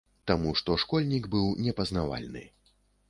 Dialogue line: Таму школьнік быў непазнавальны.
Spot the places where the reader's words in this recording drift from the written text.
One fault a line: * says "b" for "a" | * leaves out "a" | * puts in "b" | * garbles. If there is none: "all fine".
* puts in "што"